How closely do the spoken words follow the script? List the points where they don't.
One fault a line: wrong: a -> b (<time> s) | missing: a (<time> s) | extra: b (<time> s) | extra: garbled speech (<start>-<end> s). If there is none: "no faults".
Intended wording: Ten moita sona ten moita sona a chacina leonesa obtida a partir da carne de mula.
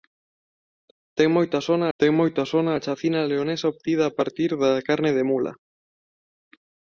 no faults